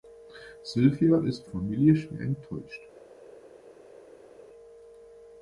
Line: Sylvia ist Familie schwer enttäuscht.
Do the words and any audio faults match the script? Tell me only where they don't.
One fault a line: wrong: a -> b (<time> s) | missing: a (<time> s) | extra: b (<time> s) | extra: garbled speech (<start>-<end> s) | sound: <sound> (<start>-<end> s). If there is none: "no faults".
no faults